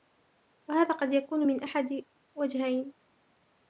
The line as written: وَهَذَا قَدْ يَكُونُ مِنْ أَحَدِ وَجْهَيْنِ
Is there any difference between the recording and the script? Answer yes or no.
no